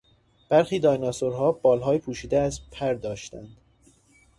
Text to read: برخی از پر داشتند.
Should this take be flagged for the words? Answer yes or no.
yes